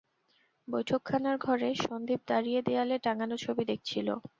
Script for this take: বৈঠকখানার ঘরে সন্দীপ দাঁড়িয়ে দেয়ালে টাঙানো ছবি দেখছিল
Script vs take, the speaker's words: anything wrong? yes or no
no